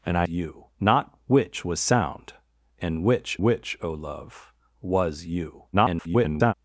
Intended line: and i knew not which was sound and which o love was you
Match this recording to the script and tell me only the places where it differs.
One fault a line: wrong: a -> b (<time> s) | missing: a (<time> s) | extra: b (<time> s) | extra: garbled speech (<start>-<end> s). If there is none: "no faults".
wrong: knew -> you (0.3 s)
extra: which (3.4 s)
extra: garbled speech (5.7-6.5 s)